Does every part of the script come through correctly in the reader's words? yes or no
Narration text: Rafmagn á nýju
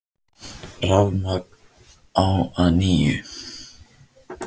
no